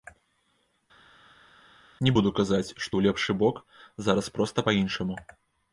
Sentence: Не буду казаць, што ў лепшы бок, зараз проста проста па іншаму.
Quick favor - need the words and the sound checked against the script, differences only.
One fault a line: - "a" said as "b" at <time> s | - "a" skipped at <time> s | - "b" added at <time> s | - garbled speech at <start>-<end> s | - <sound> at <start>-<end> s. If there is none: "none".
- "проста" skipped at 4.6 s